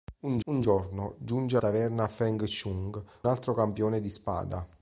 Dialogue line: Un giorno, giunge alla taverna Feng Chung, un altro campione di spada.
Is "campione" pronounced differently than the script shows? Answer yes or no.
no